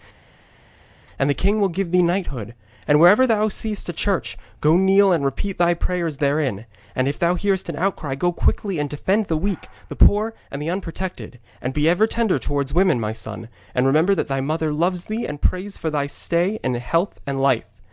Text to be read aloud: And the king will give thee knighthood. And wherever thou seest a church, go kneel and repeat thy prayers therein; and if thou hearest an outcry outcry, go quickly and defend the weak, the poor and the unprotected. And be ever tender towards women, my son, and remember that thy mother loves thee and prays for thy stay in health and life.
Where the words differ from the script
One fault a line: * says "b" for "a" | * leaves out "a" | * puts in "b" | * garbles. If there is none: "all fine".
* leaves out "outcry"